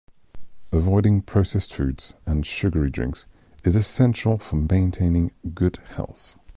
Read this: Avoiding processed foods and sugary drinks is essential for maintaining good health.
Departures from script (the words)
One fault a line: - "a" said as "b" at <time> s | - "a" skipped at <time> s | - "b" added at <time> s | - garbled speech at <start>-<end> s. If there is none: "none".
none